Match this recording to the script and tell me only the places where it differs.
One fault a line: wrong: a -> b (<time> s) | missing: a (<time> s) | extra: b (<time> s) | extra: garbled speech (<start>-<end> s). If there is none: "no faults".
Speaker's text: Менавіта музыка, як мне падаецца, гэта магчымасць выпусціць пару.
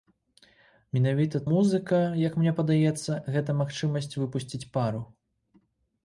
no faults